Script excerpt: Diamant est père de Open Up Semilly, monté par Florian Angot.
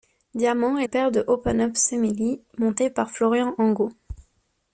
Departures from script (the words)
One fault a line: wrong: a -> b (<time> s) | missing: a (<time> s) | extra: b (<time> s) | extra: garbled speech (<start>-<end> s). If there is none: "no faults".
no faults